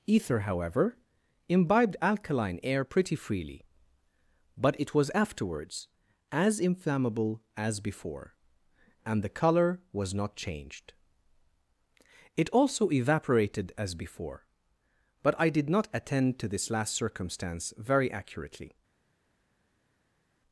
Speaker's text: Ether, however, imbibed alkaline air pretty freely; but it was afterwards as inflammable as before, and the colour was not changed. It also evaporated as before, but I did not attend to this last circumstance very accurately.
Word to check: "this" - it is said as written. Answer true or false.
true